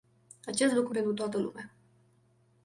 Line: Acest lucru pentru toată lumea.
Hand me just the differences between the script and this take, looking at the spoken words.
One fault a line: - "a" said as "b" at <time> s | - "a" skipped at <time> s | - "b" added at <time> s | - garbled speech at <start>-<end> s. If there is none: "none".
none